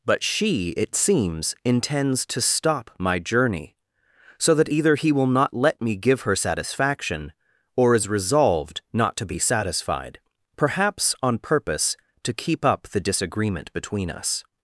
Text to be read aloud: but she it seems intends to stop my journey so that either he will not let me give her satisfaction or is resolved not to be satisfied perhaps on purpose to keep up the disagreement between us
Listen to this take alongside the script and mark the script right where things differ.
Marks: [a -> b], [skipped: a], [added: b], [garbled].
but she it seems intends to stop my journey so that either he will not let me give her satisfaction or is resolved not to be satisfied perhaps on purpose to keep up the disagreement between us